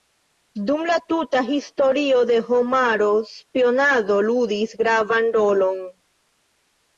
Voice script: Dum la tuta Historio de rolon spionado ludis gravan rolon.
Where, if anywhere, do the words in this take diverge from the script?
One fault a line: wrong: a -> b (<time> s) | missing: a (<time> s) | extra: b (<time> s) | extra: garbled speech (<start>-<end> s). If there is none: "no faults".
wrong: rolon -> homaro (2.5 s)